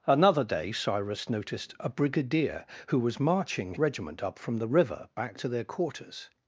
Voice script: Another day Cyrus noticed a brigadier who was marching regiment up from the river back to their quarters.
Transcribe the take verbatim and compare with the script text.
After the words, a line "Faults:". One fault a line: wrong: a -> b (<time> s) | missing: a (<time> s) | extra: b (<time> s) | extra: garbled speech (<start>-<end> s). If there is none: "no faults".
Another day Cyrus noticed a brigadier who was marching regiment up from the river back to their quarters.
Faults:
no faults